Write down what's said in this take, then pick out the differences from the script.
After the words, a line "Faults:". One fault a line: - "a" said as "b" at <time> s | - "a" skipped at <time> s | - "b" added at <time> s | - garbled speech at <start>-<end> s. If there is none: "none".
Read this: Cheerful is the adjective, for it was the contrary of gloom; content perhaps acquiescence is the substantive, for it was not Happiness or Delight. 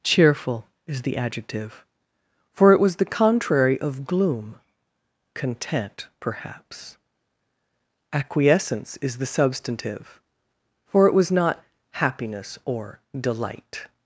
Cheerful is the adjective, for it was the contrary of gloom; content perhaps acquiescence is the substantive, for it was not Happiness or Delight.
Faults:
none